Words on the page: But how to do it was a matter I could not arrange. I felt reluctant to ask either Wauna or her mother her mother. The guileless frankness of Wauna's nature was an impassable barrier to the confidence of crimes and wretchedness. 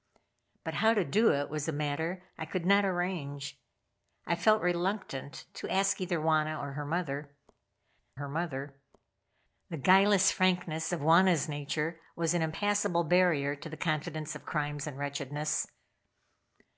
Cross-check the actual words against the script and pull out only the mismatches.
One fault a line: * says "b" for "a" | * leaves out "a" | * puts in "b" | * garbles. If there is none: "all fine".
all fine